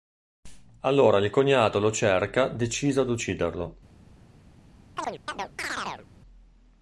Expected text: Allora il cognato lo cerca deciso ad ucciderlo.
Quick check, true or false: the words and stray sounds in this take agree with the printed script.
false